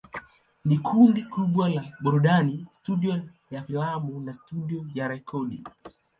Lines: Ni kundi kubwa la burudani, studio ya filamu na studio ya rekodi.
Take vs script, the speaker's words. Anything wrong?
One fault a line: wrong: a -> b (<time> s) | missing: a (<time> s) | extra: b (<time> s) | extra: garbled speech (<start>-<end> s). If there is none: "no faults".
no faults